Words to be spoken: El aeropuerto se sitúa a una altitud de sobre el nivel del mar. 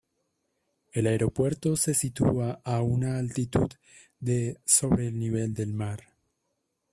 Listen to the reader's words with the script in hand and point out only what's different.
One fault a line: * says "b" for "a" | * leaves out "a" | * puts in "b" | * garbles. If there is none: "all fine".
all fine